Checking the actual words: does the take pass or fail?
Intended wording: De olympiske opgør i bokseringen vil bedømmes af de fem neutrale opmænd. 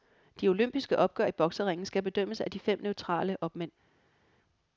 fail